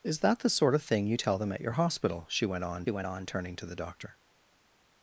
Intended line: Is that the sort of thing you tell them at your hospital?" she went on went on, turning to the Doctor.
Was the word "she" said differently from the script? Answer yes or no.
no